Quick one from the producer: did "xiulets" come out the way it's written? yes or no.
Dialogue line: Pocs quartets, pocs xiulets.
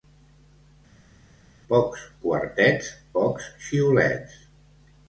yes